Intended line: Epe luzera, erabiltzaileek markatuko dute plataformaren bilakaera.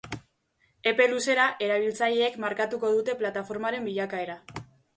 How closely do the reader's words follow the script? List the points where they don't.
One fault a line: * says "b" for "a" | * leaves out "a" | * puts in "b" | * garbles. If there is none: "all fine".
all fine